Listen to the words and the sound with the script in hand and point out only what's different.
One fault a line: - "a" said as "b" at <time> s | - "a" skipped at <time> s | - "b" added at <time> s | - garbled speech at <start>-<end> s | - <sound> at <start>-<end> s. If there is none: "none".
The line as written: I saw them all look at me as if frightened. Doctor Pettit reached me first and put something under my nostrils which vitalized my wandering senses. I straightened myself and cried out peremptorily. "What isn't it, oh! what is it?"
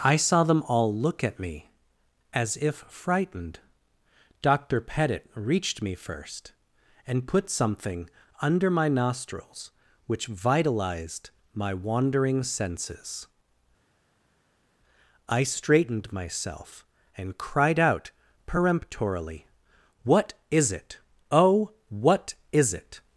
- "isn't" said as "is" at 20.5 s